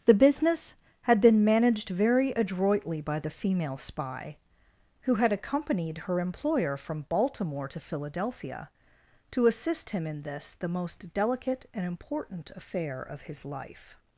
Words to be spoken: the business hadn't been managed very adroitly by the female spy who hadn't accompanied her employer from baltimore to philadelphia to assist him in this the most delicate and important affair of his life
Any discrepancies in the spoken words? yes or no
yes